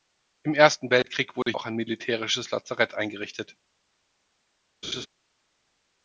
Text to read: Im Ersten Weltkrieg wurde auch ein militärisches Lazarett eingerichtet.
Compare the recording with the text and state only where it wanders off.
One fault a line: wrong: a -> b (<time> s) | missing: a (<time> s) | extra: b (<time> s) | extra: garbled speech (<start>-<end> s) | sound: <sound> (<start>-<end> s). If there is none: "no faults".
sound: dropout (1.4-1.5 s)
sound: laugh (4.8-5.1 s)